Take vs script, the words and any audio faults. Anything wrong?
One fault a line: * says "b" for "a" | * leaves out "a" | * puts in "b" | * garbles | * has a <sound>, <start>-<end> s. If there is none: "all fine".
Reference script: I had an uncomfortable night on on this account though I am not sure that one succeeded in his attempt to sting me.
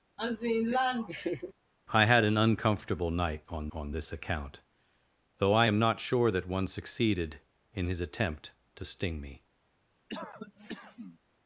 * has a laugh, 0.2-1.5 s
* has a cough, 10.1-11.2 s